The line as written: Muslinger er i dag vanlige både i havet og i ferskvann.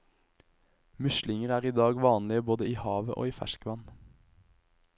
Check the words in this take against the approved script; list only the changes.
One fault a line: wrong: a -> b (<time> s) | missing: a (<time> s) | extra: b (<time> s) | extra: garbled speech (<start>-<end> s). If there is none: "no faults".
no faults